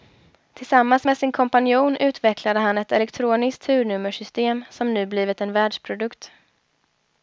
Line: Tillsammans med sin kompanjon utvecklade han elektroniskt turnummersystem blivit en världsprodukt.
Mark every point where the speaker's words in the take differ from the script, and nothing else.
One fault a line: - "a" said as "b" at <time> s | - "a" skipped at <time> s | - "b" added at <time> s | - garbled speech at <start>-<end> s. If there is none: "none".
- "ett" added at 2.8 s
- "som nu" added at 4.7 s